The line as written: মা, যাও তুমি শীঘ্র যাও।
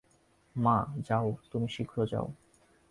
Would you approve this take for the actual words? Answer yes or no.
yes